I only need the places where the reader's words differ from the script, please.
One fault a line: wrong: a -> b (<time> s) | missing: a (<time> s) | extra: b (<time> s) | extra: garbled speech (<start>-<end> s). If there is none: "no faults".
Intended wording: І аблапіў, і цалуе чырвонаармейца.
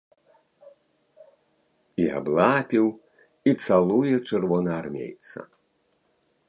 no faults